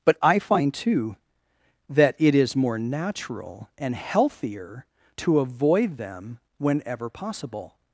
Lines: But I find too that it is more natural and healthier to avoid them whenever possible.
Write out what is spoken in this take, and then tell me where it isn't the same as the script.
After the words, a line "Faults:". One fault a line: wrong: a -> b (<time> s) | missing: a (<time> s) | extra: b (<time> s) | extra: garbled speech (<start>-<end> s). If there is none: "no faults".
But I find too that it is more natural and healthier to avoid them whenever possible.
Faults:
no faults